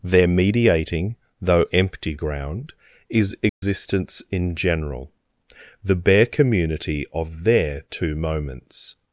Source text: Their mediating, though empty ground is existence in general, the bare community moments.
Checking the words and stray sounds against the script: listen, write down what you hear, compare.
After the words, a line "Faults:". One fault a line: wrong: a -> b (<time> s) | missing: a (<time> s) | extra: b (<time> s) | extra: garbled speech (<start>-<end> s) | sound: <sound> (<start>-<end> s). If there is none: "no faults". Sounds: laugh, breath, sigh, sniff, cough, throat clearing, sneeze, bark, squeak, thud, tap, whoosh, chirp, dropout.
Their mediating, though empty ground is existence in general, the bare community of their two moments.
Faults:
sound: dropout (3.5-3.6 s)
extra: of their two (7.1 s)